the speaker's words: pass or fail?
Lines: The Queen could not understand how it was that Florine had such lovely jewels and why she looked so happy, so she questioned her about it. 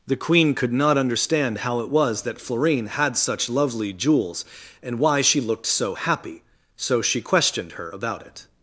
pass